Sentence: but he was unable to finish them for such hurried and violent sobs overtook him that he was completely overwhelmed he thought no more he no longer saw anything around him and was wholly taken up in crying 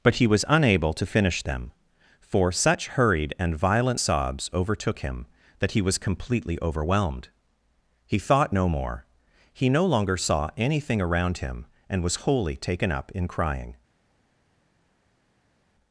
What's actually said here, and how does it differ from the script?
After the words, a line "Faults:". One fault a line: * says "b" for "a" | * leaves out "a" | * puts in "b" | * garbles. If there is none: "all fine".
but he was unable to finish them for such hurried and violent sobs overtook him that he was completely overwhelmed he thought no more he no longer saw anything around him and was wholly taken up in crying
Faults:
all fine